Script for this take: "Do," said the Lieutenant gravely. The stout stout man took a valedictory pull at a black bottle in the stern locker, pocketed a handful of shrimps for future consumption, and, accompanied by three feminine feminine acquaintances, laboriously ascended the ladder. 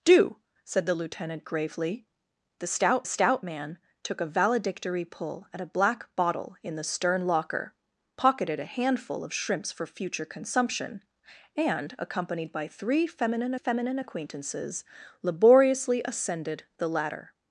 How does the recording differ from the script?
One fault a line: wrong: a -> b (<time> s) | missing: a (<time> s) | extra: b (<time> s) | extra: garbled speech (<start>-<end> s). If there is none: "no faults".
no faults